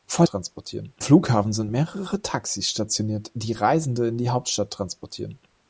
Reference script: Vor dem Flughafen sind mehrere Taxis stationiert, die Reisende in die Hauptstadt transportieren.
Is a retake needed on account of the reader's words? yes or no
yes